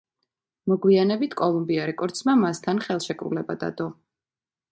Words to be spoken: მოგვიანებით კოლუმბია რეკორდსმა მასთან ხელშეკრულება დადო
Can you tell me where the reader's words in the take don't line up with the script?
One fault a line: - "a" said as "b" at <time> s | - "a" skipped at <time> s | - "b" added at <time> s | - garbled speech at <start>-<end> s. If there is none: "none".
none